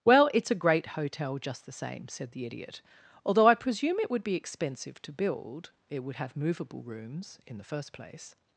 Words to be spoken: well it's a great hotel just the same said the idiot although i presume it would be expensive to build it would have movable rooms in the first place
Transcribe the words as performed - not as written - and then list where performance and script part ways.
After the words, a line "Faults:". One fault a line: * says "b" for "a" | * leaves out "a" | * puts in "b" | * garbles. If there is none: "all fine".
well it's a great hotel just the same said the idiot although i presume it would be expensive to build it would have movable rooms in the first place
Faults:
all fine